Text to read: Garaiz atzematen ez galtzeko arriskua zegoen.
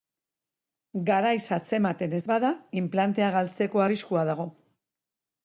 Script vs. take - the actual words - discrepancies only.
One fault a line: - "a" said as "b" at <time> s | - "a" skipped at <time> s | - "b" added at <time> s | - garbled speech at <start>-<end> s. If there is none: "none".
- "bada inplantea" added at 2.3 s
- "zegoen" said as "dago" at 4.3 s